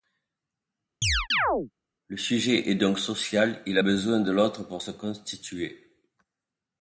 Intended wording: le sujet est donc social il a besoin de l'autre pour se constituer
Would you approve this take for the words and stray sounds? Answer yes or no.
no